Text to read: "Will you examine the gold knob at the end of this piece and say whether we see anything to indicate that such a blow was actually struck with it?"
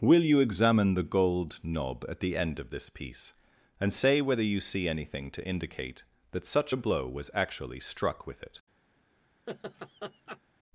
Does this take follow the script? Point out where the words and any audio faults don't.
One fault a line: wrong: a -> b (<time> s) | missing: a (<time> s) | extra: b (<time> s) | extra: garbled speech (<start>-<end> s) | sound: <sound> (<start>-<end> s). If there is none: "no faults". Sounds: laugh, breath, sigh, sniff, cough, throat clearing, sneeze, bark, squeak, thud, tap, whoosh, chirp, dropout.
wrong: we -> you (4.4 s)
sound: laugh (9.5-10.4 s)